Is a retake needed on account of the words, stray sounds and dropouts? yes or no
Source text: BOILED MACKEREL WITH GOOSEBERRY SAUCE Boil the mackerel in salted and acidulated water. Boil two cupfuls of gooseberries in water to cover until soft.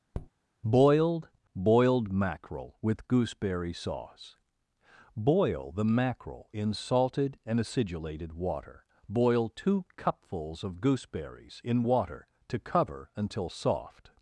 yes